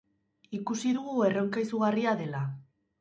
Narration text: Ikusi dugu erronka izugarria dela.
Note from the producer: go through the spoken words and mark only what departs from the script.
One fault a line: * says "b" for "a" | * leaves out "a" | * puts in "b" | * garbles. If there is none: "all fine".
all fine